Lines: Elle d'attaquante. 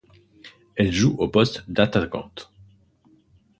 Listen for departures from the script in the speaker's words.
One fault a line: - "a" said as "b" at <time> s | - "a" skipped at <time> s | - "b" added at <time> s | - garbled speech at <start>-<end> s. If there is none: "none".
- "joue au poste" added at 0.9 s